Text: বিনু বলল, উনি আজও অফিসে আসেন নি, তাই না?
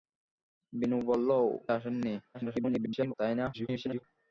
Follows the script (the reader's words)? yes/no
no